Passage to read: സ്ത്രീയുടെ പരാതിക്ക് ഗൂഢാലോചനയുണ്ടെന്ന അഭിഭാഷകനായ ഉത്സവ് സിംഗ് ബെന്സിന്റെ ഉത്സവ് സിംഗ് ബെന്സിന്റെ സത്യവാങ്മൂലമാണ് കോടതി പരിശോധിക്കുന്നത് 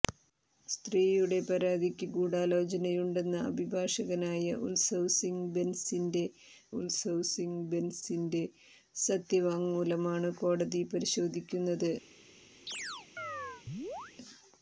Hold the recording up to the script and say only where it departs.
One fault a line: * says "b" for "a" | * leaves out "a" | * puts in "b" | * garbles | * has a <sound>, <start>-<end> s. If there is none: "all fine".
* has a chirp, 12.7-14.2 s